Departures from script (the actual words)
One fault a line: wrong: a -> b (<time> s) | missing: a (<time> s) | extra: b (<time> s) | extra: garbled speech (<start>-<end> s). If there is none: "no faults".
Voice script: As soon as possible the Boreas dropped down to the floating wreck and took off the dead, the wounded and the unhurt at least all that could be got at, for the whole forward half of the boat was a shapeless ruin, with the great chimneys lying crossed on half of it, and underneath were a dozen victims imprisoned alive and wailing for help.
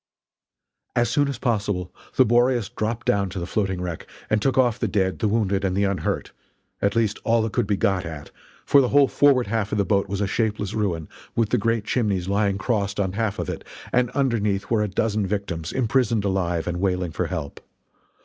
no faults